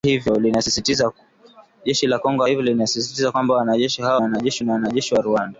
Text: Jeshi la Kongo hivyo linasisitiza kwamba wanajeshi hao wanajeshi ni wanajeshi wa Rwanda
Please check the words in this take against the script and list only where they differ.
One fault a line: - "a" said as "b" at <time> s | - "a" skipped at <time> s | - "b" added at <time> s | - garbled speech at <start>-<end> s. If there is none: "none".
none